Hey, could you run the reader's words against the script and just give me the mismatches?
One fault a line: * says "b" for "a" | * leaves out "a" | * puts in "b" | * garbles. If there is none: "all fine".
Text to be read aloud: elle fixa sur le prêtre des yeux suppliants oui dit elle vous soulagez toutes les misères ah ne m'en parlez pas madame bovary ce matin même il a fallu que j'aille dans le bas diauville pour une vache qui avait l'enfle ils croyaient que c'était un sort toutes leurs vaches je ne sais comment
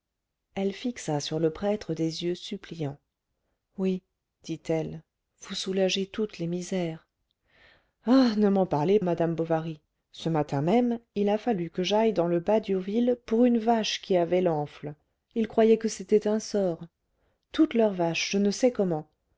* leaves out "pas"